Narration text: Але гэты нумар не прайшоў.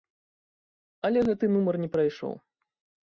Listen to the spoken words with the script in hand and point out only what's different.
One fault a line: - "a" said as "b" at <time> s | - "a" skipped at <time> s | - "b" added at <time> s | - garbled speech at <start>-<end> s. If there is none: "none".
none